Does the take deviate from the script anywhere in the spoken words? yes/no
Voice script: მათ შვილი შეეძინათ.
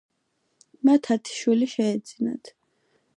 yes